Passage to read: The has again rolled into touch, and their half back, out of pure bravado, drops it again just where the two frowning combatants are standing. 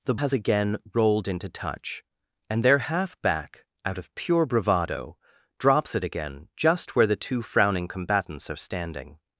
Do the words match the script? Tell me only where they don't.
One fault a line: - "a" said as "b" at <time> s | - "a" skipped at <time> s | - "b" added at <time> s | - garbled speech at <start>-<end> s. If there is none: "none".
none